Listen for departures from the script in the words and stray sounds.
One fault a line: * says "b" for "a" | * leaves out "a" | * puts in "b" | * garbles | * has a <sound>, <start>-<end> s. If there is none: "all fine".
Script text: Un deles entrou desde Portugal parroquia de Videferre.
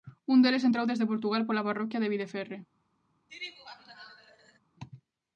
* puts in "pola"
* has a laugh, 3.3-4.6 s